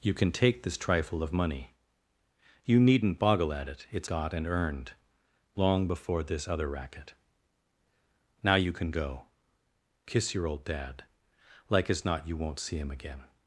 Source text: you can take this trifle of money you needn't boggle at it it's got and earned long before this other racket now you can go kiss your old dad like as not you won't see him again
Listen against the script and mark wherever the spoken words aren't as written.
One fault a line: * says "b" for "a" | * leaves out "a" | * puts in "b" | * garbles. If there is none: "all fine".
all fine